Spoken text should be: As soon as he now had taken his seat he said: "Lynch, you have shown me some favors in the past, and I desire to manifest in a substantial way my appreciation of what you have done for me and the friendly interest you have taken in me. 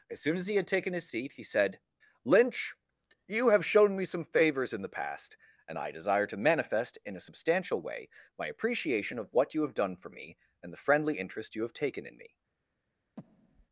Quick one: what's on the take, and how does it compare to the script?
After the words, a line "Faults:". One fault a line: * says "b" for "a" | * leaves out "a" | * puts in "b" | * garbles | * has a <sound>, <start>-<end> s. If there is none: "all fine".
As soon as he had taken his seat he said: "Lynch, you have shown me some favors in the past, and I desire to manifest in a substantial way my appreciation of what you have done for me and the friendly interest you have taken in me.
Faults:
* leaves out "now"
* has a breath, 13.2-13.7 s